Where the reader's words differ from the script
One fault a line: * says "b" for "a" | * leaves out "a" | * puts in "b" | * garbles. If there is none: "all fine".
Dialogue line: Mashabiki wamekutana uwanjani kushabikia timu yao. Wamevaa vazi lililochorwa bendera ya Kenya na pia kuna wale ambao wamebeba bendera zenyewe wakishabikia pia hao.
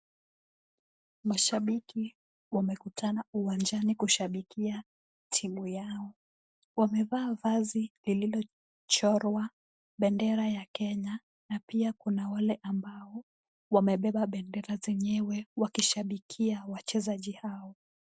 * says "wachezaji" for "pia"